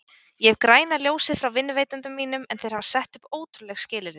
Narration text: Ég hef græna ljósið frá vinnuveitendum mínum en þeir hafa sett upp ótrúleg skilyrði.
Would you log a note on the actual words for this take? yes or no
no